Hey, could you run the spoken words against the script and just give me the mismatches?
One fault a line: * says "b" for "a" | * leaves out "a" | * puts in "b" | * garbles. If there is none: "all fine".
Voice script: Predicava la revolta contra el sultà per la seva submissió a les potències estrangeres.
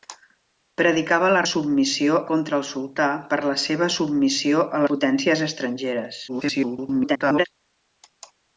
* says "submissió" for "revolta"
* leaves out "les"
* garbles